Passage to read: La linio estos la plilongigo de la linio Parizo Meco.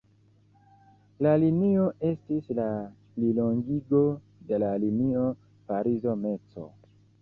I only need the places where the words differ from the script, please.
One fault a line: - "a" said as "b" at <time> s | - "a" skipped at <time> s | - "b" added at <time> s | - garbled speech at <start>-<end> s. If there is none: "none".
- "estos" said as "estis" at 2.1 s